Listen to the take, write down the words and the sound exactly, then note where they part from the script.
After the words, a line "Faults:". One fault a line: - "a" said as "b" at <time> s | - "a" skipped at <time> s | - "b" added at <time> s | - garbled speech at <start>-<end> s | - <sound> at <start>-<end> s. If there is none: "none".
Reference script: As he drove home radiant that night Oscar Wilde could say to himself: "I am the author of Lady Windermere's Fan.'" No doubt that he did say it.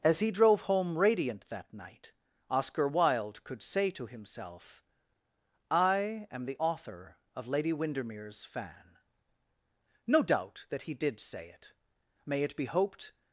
As he drove home radiant that night Oscar Wilde could say to himself: "I am the author of Lady Windermere's Fan.'" No doubt that he did say it. May it be hoped
Faults:
- "May it be hoped" added at 12.2 s